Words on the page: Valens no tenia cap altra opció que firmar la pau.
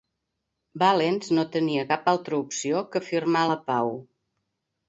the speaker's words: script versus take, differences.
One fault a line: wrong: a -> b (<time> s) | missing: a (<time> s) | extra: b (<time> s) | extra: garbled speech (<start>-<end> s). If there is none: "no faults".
no faults